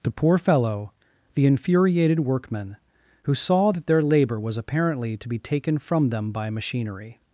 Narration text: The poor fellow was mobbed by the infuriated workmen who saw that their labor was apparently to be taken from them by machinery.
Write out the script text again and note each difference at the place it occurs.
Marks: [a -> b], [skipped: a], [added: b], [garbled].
The poor fellow [skipped: was mobbed by] the infuriated workmen who saw that their labor was apparently to be taken from them by machinery.